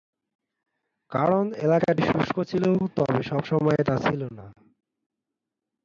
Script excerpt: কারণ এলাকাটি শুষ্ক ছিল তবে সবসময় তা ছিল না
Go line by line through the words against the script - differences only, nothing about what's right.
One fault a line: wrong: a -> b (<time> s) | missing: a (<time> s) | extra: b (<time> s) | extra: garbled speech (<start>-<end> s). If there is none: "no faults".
no faults